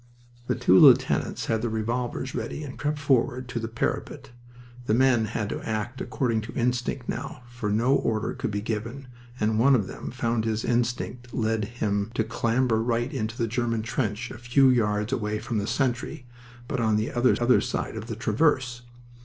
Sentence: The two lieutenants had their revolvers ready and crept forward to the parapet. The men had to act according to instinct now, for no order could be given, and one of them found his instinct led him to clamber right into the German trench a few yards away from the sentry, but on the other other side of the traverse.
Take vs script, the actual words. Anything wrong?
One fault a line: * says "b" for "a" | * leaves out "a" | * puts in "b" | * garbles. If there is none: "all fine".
all fine